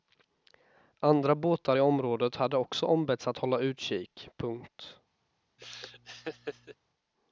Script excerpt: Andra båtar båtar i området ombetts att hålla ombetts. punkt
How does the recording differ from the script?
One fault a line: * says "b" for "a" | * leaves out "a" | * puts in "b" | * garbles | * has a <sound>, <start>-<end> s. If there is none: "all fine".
* leaves out "båtar"
* puts in "hade också"
* says "utkik" for "ombetts"
* has a laugh, 5.6-6.8 s